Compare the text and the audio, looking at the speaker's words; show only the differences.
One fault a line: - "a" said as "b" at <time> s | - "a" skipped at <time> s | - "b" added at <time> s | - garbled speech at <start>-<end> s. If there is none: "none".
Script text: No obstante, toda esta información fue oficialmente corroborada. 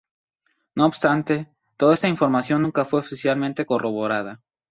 - "nunca" added at 2.6 s